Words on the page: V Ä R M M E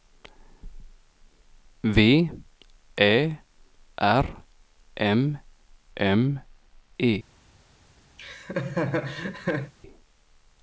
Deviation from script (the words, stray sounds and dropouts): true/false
true